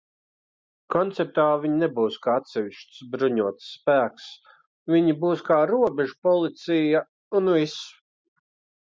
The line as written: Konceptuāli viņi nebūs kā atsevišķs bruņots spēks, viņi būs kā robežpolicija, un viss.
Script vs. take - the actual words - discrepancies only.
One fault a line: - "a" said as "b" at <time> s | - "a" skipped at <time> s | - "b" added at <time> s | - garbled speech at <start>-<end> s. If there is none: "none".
none